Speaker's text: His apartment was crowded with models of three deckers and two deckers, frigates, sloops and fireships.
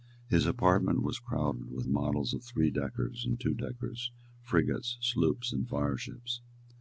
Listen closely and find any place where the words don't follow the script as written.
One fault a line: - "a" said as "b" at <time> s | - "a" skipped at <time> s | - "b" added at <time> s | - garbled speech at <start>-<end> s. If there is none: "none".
none